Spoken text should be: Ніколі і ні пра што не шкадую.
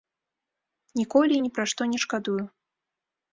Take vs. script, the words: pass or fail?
pass